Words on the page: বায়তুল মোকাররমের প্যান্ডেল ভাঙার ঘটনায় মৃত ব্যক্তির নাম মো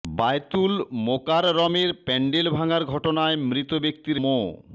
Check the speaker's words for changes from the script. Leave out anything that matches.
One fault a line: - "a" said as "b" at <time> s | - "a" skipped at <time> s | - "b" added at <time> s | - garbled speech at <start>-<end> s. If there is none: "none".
- "নাম" skipped at 4.2 s